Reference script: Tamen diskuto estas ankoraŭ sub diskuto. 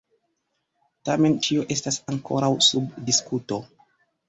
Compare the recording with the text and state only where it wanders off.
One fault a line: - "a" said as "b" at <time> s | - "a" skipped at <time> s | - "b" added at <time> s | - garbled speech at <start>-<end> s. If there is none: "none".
- "diskuto" said as "ĉio" at 1.5 s